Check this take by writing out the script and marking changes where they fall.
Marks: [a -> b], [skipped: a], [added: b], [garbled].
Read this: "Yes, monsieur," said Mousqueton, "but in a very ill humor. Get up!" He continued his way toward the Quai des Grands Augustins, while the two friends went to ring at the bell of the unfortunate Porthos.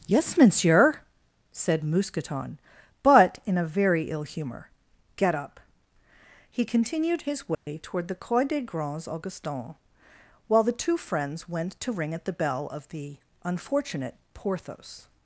"Yes, monsieur," said Mousqueton, "but in a very ill humor. Get up!" He continued his way toward the Quai des Grands Augustins, while the two friends went to ring at the bell of the unfortunate Porthos.